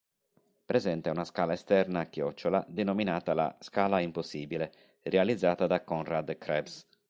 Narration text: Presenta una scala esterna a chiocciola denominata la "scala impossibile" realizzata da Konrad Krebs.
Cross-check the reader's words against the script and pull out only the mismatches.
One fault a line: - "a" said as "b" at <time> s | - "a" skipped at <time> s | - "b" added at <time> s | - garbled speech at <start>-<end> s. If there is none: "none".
none